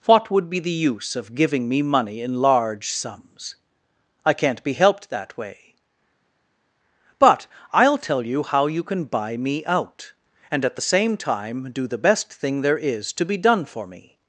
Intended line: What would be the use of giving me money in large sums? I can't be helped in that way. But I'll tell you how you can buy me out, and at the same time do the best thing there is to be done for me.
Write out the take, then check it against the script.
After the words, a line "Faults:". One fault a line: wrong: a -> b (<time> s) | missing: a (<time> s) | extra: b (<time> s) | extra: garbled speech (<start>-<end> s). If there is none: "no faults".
What would be the use of giving me money in large sums? I can't be helped that way. But I'll tell you how you can buy me out, and at the same time do the best thing there is to be done for me.
Faults:
missing: in (5.1 s)